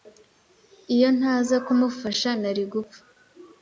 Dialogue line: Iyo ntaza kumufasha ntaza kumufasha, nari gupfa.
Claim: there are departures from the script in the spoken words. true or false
true